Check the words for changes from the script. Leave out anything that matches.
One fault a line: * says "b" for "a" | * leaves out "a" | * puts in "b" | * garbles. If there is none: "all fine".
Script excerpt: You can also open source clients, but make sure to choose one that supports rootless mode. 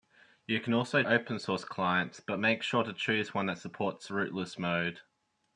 all fine